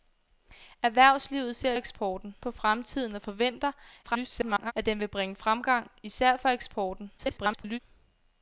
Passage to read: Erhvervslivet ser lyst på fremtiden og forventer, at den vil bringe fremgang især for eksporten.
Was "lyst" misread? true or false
true